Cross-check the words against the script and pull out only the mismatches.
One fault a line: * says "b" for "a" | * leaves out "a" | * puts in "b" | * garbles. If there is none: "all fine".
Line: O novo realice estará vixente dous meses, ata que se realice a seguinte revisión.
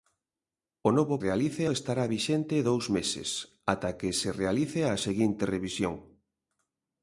all fine